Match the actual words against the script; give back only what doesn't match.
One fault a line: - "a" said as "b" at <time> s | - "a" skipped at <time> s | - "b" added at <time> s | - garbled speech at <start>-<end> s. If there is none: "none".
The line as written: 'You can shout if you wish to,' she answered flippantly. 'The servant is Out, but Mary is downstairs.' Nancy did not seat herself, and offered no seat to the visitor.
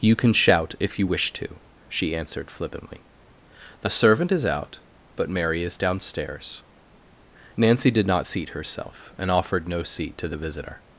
none